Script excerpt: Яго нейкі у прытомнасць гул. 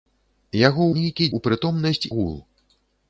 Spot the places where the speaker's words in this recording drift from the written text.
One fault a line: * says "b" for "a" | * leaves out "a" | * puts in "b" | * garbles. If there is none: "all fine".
all fine